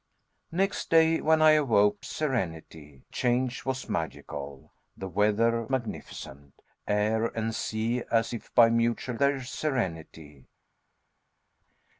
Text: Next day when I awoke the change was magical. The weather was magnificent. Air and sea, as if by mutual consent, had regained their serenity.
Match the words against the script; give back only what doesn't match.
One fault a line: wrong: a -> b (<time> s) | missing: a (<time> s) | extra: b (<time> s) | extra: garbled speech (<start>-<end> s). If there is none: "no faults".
wrong: the -> serenity (2.0 s)
missing: was (5.6 s)
missing: consent had regained (9.2 s)